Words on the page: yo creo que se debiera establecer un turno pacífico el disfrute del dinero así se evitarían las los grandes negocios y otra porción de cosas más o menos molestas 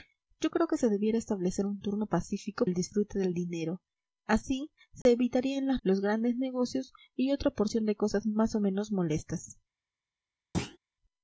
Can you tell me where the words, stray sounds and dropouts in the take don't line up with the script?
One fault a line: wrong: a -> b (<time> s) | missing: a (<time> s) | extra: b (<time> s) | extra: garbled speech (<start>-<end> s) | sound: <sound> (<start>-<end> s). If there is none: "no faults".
sound: dropout (5.0-5.1 s)
sound: thud (10.5-10.8 s)